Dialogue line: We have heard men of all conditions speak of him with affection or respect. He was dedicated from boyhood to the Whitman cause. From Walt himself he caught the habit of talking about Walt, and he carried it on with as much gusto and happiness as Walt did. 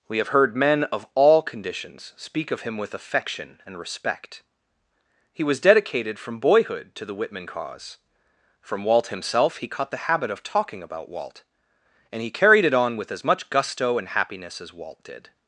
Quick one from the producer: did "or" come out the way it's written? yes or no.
no